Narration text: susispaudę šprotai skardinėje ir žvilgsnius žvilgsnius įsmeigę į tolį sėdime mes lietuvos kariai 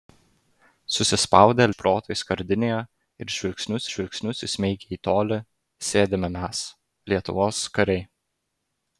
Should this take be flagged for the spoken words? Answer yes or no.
no